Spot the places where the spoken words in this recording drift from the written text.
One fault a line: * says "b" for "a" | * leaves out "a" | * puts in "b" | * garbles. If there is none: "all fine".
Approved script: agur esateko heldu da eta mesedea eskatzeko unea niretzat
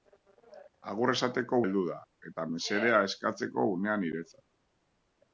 all fine